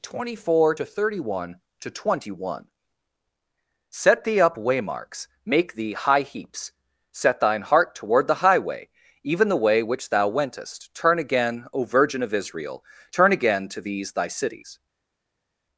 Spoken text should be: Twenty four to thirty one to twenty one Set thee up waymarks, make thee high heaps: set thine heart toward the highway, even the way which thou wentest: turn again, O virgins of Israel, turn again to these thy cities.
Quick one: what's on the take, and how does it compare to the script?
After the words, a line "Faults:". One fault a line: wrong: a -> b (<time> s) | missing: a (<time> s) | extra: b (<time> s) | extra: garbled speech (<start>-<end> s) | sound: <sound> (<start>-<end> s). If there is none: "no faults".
Twenty four to thirty one to twenty one Set thee up waymarks, make thee high heaps: set thine heart toward the highway, even the way which thou wentest: turn again, O virgin of Israel, turn again to these thy cities.
Faults:
wrong: virgins -> virgin (11.8 s)